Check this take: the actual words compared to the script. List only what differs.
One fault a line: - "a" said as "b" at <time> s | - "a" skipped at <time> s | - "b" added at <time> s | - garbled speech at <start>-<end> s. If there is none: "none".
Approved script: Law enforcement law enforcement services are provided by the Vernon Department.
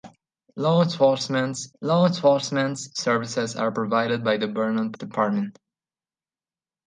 none